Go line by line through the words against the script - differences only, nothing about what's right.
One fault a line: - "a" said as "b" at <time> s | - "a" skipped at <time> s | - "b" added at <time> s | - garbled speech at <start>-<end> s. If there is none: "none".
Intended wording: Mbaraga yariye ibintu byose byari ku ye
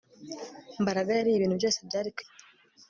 none